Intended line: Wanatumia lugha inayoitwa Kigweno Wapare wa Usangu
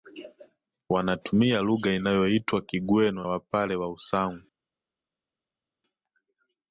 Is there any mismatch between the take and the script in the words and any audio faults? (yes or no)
no